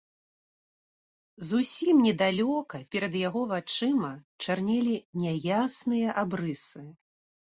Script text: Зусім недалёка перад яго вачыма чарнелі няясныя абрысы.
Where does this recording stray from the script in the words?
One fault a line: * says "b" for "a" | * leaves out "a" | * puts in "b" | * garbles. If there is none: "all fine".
all fine